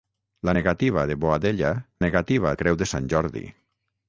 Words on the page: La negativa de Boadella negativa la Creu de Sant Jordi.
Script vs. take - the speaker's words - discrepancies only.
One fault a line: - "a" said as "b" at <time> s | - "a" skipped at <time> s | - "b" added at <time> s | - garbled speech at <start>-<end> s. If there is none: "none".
none